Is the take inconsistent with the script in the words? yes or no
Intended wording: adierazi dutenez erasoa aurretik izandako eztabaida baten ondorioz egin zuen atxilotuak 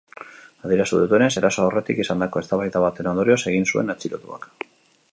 no